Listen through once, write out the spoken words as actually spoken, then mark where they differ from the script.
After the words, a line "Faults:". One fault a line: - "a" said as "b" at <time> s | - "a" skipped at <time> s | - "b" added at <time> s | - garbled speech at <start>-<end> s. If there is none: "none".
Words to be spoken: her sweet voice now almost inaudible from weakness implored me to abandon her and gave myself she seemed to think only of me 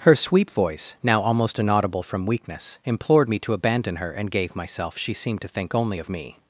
her sweet voice now almost inaudible from weakness implored me to abandon her and gave myself she seemed to think only of me
Faults:
none